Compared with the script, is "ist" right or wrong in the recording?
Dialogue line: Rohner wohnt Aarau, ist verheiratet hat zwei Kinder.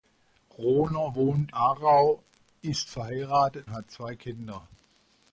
right